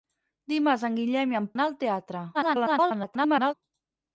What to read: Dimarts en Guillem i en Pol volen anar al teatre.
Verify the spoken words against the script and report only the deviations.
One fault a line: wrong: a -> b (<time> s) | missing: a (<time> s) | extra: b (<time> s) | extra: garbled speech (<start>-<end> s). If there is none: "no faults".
missing: Pol volen (1.5 s)
extra: garbled speech (2.3-3.5 s)